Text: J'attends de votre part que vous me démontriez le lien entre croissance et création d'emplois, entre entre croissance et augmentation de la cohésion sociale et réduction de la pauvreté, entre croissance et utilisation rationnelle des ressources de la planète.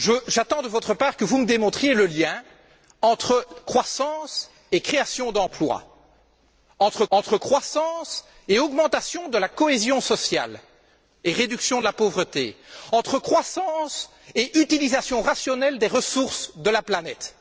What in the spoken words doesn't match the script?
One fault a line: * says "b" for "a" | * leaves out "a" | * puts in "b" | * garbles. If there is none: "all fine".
all fine